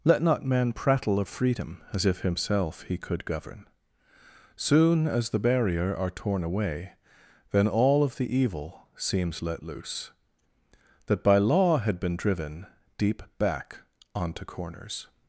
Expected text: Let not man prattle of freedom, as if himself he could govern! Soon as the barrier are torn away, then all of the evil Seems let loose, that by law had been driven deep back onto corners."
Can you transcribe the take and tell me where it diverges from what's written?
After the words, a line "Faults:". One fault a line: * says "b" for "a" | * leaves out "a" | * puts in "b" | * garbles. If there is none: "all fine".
Let not man prattle of freedom, as if himself he could govern! Soon as the barrier are torn away, then all of the evil Seems let loose, that by law had been driven deep back onto corners."
Faults:
all fine